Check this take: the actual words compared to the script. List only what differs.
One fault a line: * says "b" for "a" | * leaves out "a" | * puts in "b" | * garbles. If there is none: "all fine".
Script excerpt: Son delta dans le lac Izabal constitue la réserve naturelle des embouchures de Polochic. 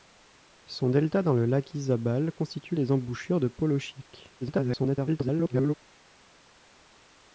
* leaves out "la réserve naturelle"
* garbles